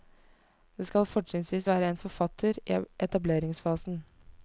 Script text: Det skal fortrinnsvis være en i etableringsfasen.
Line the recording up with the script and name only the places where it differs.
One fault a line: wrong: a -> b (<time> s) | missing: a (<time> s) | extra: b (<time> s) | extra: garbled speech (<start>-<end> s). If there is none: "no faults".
extra: forfatter (2.0 s)